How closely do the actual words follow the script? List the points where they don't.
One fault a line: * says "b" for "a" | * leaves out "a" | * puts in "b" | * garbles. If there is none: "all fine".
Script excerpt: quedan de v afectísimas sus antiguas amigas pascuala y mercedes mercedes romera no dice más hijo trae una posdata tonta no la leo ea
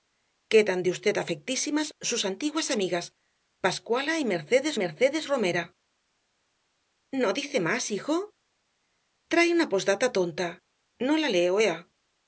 all fine